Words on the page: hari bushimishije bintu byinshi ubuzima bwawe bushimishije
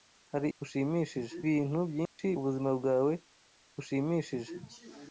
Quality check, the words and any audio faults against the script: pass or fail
fail